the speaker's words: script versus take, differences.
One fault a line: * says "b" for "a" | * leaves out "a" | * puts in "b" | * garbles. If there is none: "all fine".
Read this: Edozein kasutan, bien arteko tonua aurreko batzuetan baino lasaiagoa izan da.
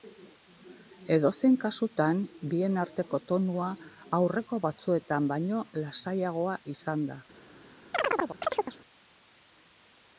all fine